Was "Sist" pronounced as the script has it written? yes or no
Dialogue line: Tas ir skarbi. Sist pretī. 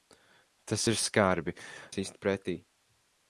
yes